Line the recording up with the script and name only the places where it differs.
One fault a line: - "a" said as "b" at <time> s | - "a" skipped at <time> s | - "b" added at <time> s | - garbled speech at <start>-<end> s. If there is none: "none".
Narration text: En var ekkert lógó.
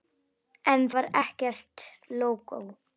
none